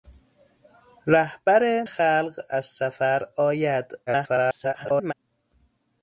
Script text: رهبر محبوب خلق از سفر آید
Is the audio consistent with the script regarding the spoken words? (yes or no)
no